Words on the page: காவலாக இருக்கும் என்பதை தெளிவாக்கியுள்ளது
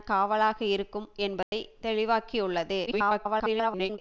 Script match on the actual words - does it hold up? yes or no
no